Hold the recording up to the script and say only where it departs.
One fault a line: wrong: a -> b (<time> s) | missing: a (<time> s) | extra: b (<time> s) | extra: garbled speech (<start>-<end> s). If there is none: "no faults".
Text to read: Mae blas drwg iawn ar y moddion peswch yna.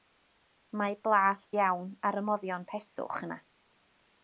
missing: drwg (1.4 s)